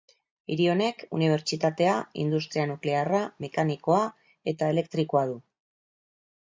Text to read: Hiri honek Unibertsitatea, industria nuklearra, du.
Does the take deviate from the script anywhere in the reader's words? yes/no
yes